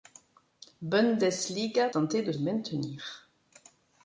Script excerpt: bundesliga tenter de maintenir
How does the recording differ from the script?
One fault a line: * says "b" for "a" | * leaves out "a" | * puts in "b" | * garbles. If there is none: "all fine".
all fine